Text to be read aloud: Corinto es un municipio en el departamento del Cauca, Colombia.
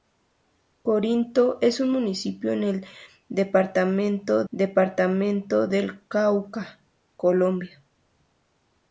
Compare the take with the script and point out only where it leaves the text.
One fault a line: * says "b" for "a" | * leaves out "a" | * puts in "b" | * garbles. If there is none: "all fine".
* puts in "departamento"